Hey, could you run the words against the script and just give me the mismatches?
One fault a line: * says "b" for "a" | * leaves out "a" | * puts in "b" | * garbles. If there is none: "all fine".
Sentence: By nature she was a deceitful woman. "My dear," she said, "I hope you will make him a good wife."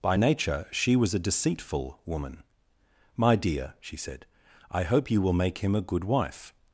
all fine